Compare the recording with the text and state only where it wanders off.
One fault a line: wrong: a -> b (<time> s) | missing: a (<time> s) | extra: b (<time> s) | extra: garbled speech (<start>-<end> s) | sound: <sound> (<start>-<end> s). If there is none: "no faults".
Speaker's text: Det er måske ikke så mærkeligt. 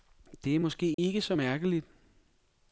sound: dropout (0.9-1.0 s)